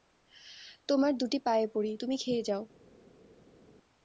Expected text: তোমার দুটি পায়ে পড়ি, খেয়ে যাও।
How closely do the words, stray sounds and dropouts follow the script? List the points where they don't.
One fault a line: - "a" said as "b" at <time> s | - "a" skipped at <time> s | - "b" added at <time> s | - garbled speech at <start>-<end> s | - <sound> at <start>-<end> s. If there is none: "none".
- "তুমি" added at 2.0 s